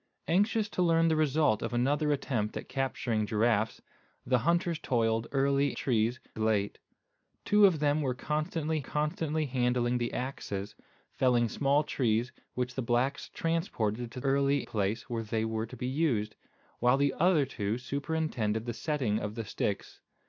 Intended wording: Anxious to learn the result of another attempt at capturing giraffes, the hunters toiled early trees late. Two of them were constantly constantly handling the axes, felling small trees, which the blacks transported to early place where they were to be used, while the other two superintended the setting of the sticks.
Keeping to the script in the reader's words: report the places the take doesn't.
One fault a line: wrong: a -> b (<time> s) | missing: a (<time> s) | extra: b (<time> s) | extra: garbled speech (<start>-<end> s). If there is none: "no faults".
no faults